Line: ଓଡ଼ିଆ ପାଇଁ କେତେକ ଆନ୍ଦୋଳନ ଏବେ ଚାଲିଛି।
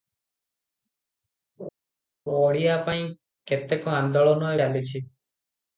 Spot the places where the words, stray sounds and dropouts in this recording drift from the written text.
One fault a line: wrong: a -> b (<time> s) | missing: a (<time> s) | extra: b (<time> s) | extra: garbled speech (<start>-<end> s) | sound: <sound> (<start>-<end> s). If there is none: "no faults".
missing: ଏବେ (4.5 s)